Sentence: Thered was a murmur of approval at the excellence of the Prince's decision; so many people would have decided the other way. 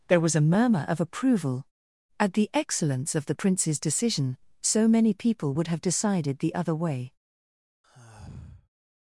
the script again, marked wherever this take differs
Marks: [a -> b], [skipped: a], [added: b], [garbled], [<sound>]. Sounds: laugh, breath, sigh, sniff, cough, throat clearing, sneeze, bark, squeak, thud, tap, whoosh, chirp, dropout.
[Thered -> There] was a murmur of approval at the excellence of the Prince's decision; so many people would have decided the other way. [sigh]